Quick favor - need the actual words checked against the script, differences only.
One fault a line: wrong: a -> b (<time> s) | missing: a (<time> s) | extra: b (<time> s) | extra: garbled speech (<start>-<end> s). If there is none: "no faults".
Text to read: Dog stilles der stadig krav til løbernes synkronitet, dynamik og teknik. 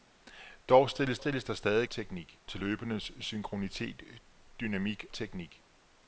extra: stilles (1.2 s)
wrong: krav -> teknik (1.9 s)
missing: og (5.0 s)